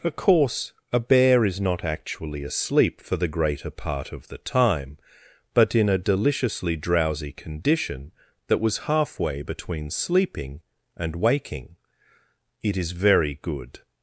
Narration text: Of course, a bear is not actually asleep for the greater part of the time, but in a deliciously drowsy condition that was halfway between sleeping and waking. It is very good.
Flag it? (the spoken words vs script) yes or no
no